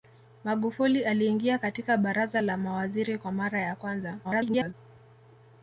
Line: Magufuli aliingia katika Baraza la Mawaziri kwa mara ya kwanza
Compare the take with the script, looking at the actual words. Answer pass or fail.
fail